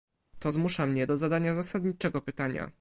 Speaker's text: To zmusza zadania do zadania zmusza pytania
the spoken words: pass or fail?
fail